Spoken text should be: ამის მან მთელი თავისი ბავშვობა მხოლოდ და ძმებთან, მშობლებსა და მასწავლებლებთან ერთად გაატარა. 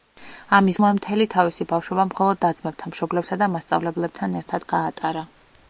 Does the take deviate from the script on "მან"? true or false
false